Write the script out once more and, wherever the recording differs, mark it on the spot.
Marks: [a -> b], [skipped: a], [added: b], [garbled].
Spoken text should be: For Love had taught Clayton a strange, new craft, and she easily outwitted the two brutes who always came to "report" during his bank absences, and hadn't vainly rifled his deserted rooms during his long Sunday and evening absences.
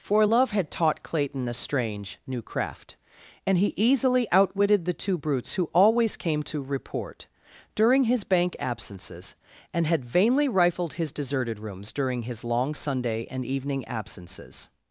For Love had taught Clayton a strange, new craft, and [she -> he] easily outwitted the two brutes who always came to "report" during his bank absences, and [hadn't -> had] vainly rifled his deserted rooms during his long Sunday and evening absences.